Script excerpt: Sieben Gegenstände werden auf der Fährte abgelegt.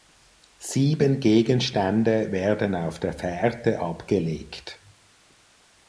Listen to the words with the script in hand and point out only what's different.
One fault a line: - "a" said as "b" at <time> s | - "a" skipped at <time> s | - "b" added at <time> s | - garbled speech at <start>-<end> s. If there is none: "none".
none